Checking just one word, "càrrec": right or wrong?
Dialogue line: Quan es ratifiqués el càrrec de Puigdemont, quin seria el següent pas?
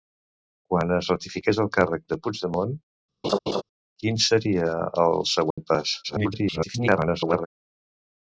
right